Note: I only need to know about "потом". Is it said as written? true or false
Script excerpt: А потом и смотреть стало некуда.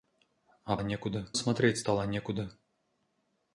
false